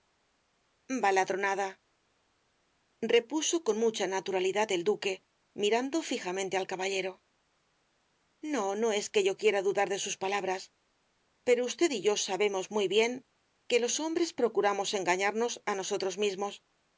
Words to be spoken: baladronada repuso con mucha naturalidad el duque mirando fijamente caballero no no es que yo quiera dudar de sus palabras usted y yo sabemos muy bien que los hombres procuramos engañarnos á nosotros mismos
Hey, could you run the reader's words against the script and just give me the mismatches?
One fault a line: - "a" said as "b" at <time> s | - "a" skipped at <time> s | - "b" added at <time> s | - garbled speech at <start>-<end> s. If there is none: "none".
- "al" added at 6.6 s
- "pero" added at 11.4 s